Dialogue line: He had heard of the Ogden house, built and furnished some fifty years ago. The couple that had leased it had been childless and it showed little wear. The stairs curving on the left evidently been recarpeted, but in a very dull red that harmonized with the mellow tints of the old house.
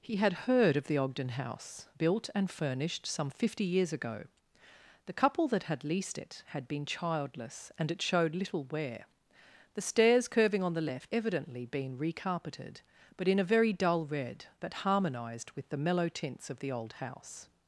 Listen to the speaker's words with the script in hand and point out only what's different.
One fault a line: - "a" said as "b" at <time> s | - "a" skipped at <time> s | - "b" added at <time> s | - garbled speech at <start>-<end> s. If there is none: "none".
none